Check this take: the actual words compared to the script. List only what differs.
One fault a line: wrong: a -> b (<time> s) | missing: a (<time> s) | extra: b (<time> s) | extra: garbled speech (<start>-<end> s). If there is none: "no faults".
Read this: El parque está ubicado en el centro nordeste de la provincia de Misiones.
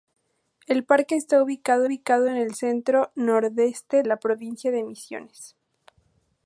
extra: ubicado (1.8 s)
missing: de (4.0 s)